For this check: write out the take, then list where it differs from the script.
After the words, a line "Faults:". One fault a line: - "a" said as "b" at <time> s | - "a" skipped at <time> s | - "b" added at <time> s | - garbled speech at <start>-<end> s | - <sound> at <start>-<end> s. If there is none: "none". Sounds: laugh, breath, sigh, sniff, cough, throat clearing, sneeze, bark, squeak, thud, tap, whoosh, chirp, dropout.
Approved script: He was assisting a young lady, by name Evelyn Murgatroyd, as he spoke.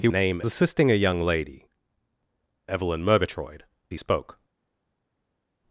He name assisting a young lady, Evelyn Murgatroyd, he spoke.
Faults:
- "was" said as "name" at 0.1 s
- "by name" skipped at 1.7 s
- "as" skipped at 3.6 s